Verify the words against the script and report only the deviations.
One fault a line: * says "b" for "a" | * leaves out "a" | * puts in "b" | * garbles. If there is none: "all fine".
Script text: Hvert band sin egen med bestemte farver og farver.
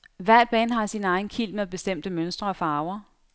* puts in "har"
* puts in "kilt"
* says "mønstre" for "farver"